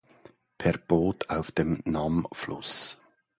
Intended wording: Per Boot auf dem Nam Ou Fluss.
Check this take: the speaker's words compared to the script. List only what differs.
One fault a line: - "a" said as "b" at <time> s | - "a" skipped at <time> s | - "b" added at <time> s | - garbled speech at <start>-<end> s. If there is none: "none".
- "Ou" skipped at 2.3 s